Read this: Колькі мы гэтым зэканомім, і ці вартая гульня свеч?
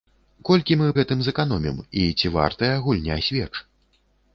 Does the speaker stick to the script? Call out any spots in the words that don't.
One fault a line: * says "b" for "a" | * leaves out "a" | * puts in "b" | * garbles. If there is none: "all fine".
all fine